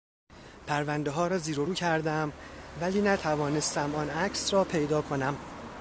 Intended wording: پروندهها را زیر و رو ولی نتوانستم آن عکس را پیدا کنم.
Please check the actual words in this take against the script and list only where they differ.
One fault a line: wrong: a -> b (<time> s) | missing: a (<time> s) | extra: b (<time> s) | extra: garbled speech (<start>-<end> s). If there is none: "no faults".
extra: کردم (1.7 s)